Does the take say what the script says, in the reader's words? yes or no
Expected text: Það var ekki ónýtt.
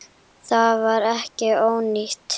yes